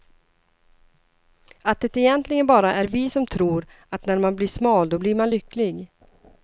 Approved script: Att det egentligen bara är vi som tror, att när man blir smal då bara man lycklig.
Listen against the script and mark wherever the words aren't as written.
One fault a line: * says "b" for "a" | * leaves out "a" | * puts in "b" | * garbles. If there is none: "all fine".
* says "blir" for "bara"